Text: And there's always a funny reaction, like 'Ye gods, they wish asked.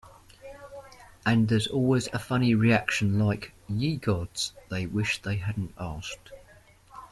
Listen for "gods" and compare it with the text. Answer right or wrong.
right